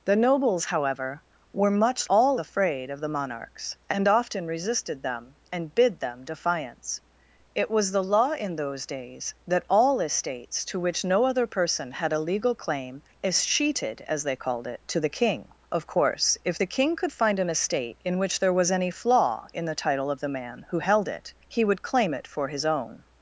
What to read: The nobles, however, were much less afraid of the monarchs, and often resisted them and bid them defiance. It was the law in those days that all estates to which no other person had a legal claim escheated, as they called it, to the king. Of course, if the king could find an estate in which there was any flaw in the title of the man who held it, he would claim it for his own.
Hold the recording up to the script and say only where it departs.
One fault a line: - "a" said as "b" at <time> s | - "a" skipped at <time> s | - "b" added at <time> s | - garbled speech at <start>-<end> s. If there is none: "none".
- "less" said as "all" at 2.1 s